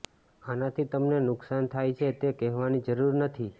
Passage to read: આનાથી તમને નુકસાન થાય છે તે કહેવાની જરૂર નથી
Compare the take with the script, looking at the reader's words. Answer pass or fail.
pass